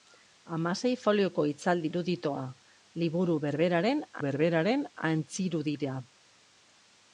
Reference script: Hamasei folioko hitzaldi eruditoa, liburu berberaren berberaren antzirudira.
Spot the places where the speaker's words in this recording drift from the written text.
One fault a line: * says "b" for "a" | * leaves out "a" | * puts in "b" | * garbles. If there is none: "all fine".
all fine